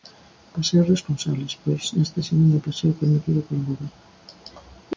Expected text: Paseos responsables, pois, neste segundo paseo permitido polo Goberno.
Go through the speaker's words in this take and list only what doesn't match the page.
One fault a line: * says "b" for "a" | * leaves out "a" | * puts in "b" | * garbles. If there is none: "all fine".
all fine